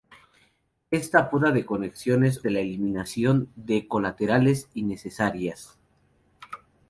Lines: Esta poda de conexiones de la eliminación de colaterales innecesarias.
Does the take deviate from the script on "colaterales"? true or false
false